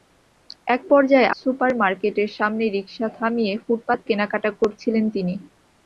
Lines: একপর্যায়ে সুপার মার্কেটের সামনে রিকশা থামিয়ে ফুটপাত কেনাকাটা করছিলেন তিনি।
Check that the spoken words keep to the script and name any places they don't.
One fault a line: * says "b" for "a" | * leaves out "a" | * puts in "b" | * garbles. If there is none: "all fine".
all fine